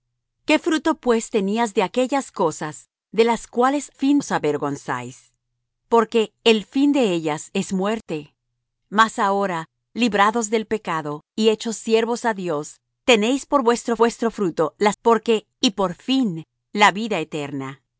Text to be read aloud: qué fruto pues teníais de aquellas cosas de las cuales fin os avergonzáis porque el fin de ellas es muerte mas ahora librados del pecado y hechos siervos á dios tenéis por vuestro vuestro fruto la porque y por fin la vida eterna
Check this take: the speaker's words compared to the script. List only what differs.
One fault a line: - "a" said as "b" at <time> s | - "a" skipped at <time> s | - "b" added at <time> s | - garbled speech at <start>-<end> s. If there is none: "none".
none